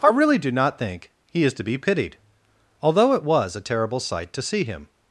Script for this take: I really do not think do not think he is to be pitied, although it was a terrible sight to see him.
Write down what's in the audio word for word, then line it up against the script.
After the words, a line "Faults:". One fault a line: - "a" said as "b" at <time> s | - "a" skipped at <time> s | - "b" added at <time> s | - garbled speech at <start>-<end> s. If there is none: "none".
I really do not think he is to be pitied, although it was a terrible sight to see him.
Faults:
- "do not think" skipped at 1.1 s